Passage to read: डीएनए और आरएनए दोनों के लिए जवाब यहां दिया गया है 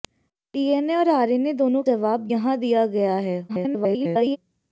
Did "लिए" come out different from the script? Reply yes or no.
yes